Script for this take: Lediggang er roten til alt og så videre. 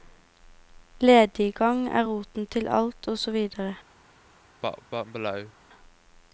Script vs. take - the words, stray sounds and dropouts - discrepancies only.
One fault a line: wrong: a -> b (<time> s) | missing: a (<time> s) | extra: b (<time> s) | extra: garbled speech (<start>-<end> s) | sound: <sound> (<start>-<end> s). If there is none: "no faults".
sound: cough (4.6-5.5 s)